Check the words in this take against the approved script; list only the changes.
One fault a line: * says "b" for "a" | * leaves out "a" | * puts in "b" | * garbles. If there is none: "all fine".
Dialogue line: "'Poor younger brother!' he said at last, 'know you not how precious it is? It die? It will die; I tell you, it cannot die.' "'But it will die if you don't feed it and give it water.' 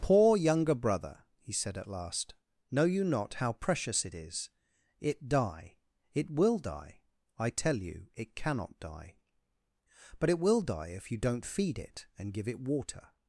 all fine